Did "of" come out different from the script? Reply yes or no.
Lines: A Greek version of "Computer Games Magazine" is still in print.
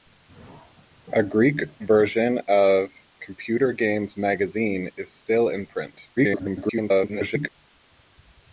no